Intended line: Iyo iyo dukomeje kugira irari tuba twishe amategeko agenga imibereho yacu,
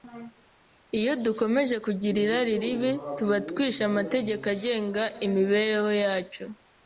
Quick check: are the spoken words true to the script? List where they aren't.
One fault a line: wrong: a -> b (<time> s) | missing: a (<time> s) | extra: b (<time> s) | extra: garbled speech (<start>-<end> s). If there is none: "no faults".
missing: iyo (1.1 s)
extra: ribi (2.6 s)